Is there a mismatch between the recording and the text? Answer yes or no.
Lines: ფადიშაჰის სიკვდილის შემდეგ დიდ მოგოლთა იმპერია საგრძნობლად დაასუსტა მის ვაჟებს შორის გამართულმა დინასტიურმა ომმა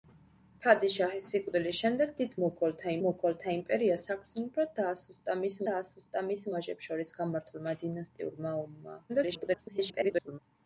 yes